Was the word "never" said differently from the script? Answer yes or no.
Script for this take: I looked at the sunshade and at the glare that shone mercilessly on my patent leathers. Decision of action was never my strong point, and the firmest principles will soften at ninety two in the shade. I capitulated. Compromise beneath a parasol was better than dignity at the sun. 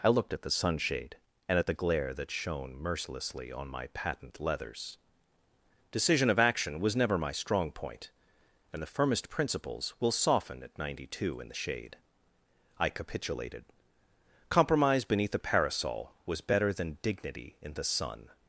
no